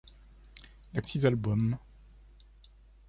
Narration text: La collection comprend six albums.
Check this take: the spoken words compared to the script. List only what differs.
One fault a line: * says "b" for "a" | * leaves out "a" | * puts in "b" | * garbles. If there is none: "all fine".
* leaves out "collection comprend"